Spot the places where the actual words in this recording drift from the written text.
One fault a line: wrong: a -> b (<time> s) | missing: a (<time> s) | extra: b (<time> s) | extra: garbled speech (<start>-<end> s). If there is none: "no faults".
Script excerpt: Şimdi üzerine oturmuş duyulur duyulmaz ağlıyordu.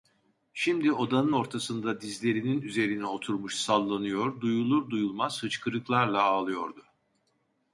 extra: odanın ortasında dizlerinin (0.9 s)
extra: sallanıyor (3.5 s)
extra: hıçkırıklarla (5.4 s)